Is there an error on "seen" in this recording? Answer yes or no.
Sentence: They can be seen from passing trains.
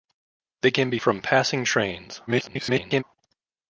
yes